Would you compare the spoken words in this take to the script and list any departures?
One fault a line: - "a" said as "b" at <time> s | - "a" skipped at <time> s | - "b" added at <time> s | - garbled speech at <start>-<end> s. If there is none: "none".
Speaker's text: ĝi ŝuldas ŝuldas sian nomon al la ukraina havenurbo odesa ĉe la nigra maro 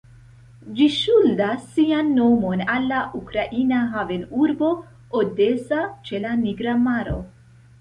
- "ŝuldas" skipped at 1.7 s